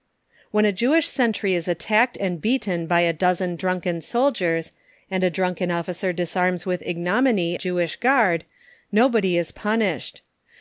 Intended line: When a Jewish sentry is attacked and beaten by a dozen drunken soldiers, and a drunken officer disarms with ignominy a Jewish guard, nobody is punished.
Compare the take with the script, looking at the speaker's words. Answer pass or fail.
fail